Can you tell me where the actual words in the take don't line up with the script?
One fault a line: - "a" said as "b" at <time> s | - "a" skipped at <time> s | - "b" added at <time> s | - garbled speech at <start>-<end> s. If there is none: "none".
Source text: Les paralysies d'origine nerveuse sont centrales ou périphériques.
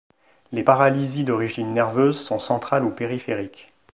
none